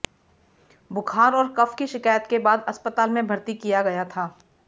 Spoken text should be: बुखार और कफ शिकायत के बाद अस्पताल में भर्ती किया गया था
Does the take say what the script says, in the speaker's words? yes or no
no